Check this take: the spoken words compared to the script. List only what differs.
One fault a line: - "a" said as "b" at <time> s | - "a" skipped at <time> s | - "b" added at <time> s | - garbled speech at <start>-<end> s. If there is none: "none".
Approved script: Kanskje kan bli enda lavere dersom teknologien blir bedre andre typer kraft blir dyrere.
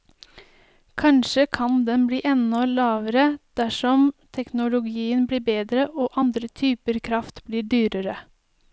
- "den" added at 1.9 s
- "og" added at 6.0 s